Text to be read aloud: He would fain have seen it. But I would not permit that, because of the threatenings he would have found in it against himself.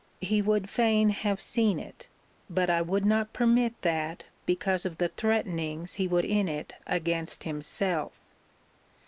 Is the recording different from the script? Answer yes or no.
yes